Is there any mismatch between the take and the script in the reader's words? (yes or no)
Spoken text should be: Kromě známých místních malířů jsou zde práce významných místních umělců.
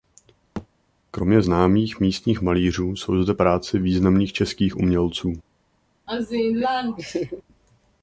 yes